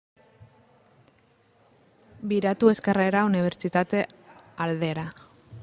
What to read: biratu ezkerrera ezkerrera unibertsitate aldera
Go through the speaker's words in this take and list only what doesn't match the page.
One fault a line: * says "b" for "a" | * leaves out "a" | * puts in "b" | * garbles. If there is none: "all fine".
* leaves out "ezkerrera"